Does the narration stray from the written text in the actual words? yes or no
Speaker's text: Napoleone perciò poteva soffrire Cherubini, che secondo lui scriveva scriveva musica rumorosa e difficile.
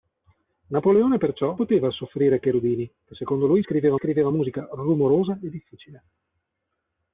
no